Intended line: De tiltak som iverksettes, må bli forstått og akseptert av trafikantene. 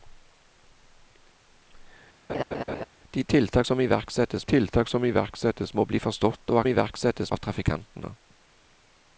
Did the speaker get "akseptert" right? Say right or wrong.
wrong